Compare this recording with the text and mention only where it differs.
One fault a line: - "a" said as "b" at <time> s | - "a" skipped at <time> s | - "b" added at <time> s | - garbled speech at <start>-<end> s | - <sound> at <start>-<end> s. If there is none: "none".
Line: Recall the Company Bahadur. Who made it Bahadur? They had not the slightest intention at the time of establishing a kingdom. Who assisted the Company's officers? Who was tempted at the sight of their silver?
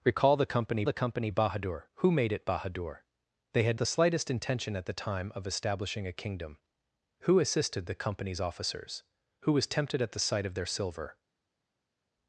- "the Company" added at 0.8 s
- "not" skipped at 3.8 s